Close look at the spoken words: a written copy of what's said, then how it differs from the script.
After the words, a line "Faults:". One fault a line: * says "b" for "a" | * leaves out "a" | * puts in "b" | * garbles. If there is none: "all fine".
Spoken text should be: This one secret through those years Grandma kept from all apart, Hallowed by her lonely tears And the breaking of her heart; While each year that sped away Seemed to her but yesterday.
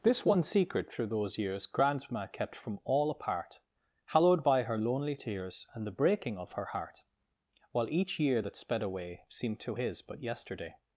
This one secret through those years Grandma kept from all apart, Hallowed by her lonely tears And the breaking of her heart; While each year that sped away Seemed to his but yesterday.
Faults:
* says "his" for "her"